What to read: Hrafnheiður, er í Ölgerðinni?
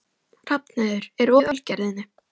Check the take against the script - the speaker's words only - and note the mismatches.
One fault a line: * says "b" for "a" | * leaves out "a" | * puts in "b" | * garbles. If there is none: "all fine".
all fine